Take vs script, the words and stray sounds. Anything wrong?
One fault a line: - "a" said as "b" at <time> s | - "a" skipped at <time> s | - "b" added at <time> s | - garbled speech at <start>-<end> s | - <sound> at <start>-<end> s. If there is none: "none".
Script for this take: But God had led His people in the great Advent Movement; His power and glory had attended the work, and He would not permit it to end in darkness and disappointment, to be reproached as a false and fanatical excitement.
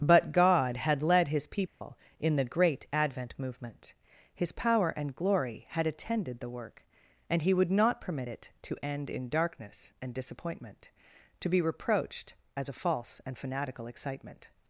- dropout at 1.7-1.8 s